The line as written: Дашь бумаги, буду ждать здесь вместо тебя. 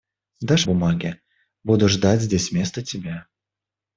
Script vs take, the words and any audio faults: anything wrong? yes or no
no